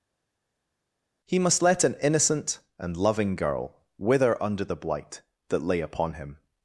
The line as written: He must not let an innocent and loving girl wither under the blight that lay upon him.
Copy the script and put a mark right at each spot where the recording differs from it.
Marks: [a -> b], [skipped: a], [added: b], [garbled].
He must [skipped: not] let an innocent and loving girl wither under the blight that lay upon him.